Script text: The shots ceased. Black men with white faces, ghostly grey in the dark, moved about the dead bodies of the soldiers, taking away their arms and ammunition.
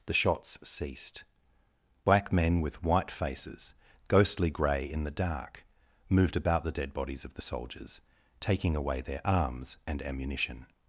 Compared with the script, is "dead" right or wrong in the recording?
right